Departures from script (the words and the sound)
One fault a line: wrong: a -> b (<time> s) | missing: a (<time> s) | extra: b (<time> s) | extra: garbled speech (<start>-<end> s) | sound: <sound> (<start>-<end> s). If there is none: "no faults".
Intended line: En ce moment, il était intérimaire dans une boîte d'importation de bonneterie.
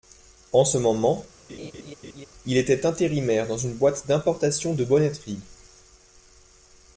sound: laugh (1.5-2.3 s)